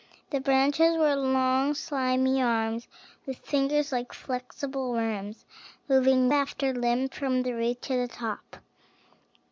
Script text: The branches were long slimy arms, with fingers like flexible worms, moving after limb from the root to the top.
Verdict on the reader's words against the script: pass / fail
pass